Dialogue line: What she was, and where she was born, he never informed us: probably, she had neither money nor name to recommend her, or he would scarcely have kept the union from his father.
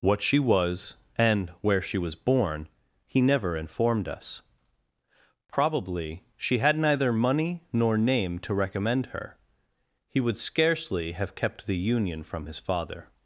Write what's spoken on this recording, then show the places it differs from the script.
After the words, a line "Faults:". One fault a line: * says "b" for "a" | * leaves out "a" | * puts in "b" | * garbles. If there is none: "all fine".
What she was, and where she was born, he never informed us: probably, she had neither money nor name to recommend her, he would scarcely have kept the union from his father.
Faults:
* leaves out "or"